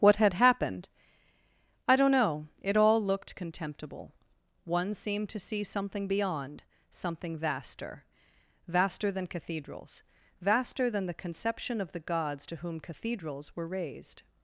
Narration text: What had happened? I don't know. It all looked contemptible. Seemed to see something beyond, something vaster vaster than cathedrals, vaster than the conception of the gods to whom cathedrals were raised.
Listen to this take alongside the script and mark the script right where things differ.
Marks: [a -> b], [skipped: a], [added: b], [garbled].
What had happened? I don't know. It all looked contemptible. [added: One] Seemed to see something beyond, something vaster vaster than cathedrals, vaster than the conception of the gods to whom cathedrals were raised.